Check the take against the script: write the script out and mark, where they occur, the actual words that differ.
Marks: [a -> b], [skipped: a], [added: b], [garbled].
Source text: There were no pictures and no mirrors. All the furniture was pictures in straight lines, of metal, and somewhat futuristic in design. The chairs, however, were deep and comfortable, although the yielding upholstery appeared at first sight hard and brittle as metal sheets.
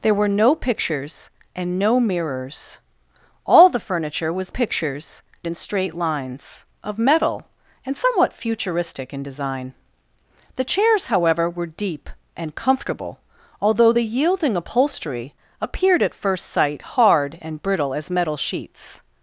There were no pictures and no mirrors. All the furniture was pictures in straight lines, of metal, and somewhat futuristic in design. The chairs, however, were deep and comfortable, although the yielding upholstery appeared at first sight hard and brittle as metal sheets.